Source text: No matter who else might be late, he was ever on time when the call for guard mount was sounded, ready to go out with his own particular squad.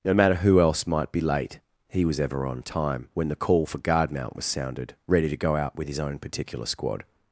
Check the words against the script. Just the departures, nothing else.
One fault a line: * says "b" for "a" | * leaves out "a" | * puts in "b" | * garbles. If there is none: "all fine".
all fine